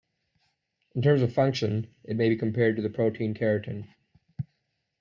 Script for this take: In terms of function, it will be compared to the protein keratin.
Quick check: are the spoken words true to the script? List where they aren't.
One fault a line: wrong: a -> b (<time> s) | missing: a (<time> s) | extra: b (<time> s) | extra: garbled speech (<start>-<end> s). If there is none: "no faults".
wrong: will -> may (2.1 s)